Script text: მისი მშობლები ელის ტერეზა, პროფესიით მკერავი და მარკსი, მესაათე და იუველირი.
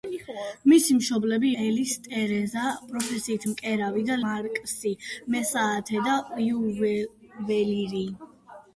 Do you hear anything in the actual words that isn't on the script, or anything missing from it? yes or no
no